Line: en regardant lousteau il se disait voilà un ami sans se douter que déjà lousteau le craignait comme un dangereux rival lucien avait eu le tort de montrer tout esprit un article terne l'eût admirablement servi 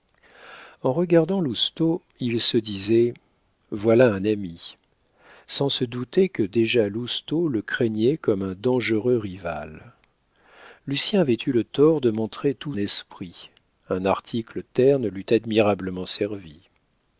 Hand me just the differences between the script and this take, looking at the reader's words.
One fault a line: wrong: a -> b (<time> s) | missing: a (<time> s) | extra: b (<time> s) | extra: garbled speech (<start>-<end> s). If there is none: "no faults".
no faults